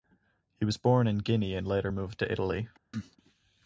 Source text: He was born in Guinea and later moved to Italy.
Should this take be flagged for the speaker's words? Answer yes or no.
no